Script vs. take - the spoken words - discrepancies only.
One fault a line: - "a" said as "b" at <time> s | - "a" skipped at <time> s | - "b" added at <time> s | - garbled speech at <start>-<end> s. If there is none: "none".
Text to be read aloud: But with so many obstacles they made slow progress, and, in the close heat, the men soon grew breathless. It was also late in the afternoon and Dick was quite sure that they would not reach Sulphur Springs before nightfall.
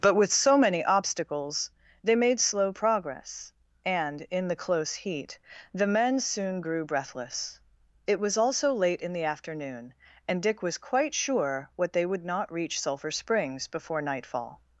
- "that" said as "what" at 11.8 s